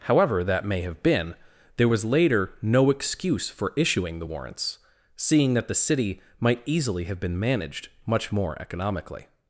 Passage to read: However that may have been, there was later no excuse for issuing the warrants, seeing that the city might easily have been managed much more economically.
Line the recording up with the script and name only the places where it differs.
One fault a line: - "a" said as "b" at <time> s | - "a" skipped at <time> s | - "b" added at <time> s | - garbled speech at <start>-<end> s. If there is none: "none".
none